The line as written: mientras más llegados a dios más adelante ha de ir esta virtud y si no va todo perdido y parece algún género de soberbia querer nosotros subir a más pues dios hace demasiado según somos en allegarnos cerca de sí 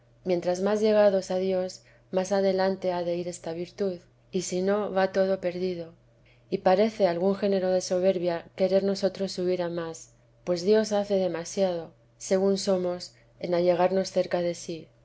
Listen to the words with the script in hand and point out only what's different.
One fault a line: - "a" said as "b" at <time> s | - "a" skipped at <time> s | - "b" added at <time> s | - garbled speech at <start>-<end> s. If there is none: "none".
none